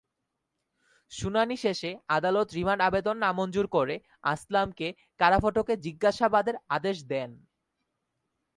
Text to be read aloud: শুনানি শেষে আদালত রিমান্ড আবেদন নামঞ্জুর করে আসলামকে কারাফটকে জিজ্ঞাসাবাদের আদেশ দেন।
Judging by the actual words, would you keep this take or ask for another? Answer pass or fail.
pass